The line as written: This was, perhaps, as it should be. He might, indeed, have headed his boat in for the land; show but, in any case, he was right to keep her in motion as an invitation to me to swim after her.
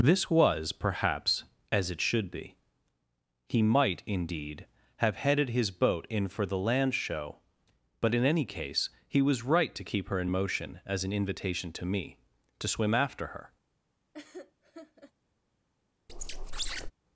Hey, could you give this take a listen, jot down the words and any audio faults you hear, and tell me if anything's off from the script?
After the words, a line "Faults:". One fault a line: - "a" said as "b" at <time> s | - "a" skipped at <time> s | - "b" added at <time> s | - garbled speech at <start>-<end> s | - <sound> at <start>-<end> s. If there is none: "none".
This was, perhaps, as it should be. He might, indeed, have headed his boat in for the land; show but, in any case, he was right to keep her in motion as an invitation to me to swim after her.
Faults:
- laugh at 14.1-15.1 s
- squeak at 16.1-16.9 s